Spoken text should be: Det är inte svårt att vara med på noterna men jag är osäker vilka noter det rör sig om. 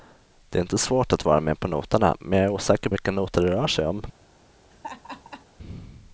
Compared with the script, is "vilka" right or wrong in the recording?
right